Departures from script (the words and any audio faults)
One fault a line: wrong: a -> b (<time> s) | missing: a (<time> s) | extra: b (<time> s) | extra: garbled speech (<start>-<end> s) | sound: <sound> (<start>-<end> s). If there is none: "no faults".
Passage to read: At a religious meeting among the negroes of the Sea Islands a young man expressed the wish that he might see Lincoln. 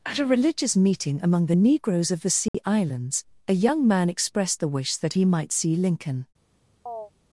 sound: dropout (2.5-2.5 s)
sound: chirp (6.9-7.1 s)